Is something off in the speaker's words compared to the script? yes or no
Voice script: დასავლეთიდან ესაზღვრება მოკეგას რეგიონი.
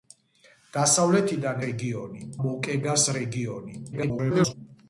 yes